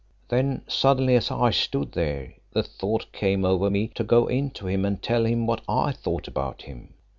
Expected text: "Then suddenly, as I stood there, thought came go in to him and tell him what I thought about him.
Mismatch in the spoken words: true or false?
true